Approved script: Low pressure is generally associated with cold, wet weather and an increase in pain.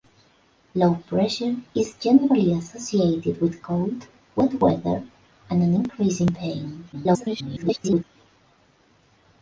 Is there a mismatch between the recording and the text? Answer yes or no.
yes